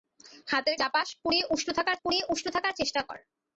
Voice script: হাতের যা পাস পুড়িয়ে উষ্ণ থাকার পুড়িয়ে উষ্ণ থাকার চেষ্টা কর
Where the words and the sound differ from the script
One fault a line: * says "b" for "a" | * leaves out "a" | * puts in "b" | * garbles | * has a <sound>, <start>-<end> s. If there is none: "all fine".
all fine